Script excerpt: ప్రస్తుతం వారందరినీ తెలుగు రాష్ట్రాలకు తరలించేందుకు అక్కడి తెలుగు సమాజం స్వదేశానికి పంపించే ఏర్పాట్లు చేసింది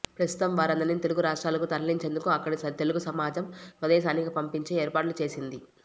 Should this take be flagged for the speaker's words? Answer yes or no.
no